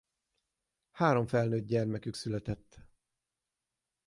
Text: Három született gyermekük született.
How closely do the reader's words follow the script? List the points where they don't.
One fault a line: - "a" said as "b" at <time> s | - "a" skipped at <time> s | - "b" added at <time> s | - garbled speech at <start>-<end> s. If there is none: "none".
- "született" said as "felnőtt" at 1.3 s